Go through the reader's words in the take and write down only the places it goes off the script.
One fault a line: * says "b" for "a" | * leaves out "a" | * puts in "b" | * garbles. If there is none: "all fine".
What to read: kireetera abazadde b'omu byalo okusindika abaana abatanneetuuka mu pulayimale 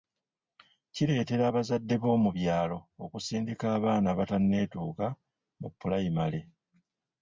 all fine